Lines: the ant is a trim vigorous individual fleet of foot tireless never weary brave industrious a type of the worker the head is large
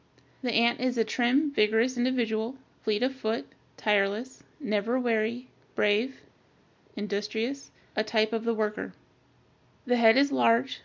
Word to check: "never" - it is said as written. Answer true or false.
true